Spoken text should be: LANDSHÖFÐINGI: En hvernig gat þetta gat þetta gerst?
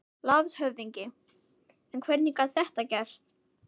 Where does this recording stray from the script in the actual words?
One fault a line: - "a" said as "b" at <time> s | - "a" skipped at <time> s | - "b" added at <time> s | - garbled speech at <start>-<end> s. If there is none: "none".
- "gat þetta" skipped at 2.9 s